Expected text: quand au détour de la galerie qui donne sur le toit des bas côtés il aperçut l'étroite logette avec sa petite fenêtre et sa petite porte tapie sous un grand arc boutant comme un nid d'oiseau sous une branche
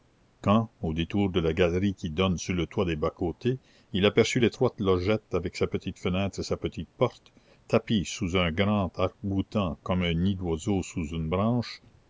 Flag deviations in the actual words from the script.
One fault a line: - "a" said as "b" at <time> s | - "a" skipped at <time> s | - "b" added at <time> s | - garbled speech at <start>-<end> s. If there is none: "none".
none